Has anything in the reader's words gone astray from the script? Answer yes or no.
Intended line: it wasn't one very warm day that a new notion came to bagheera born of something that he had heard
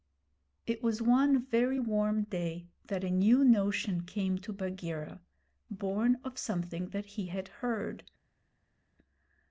yes